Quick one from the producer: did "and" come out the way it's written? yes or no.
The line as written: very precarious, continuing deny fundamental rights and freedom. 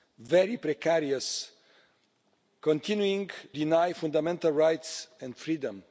yes